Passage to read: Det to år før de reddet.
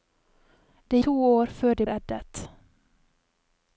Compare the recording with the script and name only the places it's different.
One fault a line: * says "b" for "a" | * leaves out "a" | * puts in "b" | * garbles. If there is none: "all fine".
all fine